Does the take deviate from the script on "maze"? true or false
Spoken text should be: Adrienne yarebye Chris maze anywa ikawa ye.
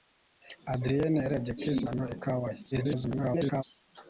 true